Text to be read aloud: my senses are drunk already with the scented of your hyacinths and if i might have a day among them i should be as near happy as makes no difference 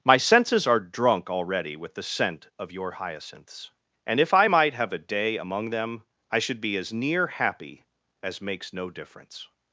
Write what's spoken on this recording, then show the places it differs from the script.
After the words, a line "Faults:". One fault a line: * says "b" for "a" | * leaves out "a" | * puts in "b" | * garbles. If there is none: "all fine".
my senses are drunk already with the scent of your hyacinths and if i might have a day among them i should be as near happy as makes no difference
Faults:
* says "scent" for "scented"